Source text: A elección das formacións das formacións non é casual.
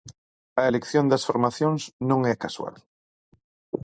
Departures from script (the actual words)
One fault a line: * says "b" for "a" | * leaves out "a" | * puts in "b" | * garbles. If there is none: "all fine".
* leaves out "das formacións"